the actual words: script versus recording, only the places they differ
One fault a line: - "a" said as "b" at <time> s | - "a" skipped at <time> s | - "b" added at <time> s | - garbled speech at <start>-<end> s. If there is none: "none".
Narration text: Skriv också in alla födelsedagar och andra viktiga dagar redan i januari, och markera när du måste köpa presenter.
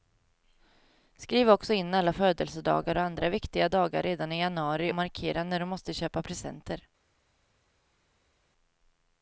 - "och" skipped at 4.9 s